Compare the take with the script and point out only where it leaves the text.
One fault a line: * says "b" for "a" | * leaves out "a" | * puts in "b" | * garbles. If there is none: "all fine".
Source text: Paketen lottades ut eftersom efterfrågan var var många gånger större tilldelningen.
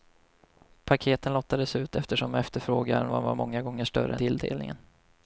all fine